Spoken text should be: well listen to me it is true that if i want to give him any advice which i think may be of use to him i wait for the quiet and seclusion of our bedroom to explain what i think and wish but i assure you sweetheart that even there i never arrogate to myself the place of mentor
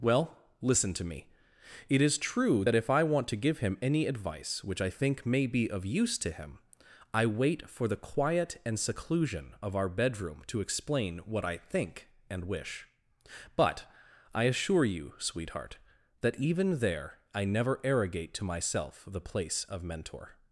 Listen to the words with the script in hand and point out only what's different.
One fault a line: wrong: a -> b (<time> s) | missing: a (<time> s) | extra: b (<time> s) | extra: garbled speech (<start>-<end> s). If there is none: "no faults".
no faults